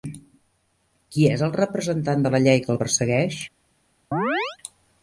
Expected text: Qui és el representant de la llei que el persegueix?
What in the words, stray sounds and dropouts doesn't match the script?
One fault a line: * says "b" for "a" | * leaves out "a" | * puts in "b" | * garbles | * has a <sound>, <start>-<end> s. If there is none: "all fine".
* has a chirp, 4.1-4.6 s